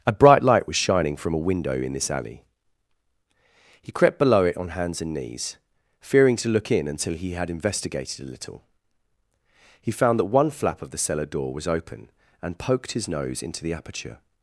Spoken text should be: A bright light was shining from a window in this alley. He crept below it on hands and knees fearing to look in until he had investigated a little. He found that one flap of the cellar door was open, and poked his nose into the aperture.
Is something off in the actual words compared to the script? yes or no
no